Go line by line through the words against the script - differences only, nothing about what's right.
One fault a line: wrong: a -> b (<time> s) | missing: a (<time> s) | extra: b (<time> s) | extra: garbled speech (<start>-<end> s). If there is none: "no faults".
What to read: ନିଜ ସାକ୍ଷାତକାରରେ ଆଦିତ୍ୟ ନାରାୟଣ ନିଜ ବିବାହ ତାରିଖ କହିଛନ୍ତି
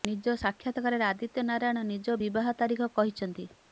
no faults